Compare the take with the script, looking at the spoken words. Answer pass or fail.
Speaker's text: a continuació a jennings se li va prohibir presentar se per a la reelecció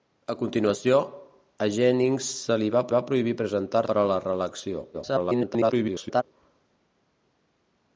fail